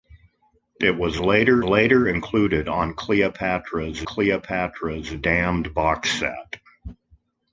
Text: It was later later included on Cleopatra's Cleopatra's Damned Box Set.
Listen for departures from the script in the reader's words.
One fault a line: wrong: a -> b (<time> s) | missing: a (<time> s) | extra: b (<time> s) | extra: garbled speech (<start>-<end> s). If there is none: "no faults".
no faults